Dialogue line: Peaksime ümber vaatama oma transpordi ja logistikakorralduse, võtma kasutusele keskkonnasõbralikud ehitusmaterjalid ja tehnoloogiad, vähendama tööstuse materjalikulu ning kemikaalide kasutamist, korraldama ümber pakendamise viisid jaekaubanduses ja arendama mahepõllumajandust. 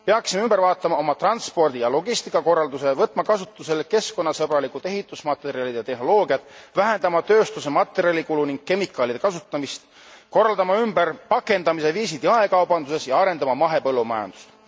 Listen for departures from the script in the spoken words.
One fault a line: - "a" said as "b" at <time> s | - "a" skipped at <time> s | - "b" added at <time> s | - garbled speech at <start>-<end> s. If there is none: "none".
none